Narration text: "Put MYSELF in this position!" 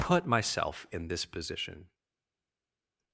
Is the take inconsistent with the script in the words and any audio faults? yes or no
no